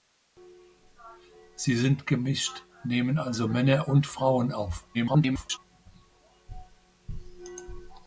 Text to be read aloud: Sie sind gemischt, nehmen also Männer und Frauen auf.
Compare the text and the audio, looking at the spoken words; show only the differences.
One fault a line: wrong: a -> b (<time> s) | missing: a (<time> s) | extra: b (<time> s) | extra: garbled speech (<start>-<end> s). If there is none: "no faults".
extra: garbled speech (4.9-5.6 s)